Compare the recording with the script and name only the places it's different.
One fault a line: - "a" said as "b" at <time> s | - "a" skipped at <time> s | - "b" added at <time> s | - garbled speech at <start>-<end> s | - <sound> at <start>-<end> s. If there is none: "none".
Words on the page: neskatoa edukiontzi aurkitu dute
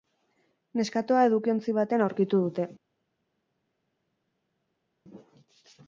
- "batean" added at 1.8 s